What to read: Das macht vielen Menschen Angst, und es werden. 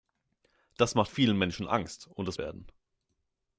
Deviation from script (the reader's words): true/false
false